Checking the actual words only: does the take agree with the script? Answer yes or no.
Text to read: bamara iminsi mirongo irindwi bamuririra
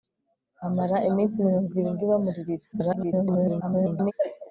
no